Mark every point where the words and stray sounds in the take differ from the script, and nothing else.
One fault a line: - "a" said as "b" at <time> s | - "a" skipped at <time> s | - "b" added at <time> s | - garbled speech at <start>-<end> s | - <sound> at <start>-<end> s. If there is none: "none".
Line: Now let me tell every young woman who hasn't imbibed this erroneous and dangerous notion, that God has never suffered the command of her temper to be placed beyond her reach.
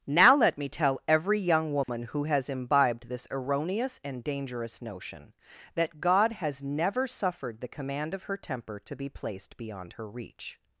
- dropout at 1.8-1.9 s
- "hasn't" said as "has" at 2.2 s